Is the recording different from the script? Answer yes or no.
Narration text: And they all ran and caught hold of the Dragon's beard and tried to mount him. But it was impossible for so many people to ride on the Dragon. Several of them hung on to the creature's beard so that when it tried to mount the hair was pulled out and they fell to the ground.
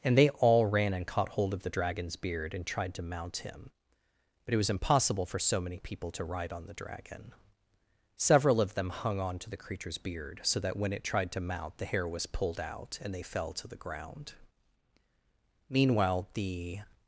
yes